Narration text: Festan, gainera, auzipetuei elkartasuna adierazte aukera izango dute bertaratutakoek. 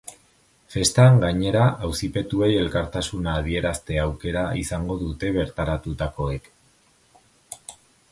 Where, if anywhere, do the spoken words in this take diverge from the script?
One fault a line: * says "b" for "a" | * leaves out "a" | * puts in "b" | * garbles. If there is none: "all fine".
all fine